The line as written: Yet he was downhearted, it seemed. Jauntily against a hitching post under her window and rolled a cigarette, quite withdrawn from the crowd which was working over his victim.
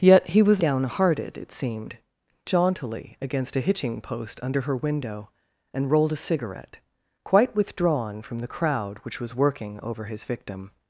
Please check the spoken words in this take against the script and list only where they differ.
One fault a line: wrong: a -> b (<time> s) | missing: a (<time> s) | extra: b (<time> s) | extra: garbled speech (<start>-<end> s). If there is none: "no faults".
no faults